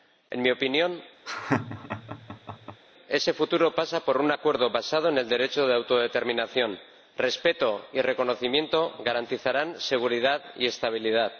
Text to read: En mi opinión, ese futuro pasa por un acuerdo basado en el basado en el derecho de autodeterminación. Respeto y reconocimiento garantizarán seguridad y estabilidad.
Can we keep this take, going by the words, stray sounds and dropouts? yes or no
no